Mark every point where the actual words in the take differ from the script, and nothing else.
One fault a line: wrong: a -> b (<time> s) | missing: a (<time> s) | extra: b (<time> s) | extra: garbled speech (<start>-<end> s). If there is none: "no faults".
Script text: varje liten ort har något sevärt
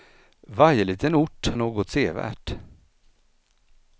missing: har (1.5 s)